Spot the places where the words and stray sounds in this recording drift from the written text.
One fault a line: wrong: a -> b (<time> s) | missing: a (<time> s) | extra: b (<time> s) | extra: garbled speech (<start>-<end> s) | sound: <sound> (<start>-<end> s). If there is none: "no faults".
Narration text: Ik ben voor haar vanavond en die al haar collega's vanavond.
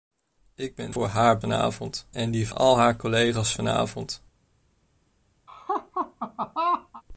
sound: laugh (5.5-7.0 s)